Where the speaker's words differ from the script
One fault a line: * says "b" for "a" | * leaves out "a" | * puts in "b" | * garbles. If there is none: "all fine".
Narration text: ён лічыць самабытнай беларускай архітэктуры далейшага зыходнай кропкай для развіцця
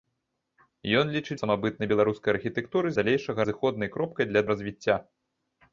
all fine